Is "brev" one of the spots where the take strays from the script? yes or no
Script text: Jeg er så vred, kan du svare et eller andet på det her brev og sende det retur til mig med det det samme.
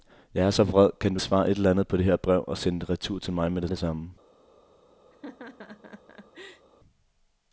no